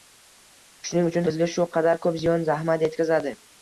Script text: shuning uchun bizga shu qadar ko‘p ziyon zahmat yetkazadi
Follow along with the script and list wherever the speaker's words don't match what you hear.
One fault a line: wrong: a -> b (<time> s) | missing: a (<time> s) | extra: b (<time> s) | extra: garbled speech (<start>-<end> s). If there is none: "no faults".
no faults